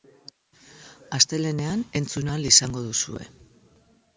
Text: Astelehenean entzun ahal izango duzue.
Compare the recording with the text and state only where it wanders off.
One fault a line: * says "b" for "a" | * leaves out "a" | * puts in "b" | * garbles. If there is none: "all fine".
all fine